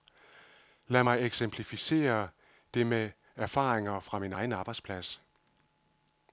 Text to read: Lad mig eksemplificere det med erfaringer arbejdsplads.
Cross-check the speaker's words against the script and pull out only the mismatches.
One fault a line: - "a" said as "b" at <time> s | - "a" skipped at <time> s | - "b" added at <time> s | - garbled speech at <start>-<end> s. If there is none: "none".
- "fra min egen" added at 4.0 s